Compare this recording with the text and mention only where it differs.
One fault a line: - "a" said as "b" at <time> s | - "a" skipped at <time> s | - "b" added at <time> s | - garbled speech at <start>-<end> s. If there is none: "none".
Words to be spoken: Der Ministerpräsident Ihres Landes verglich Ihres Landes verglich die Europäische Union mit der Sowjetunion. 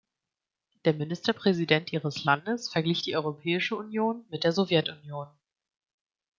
- "Ihres Landes verglich" skipped at 3.0 s